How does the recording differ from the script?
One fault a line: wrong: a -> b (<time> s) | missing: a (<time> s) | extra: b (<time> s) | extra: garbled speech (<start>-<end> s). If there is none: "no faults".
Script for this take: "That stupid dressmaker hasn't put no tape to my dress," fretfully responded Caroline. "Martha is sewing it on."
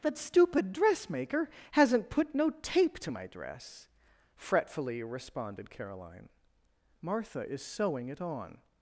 no faults